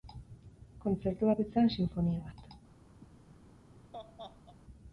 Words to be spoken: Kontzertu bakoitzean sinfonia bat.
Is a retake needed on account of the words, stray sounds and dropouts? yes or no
yes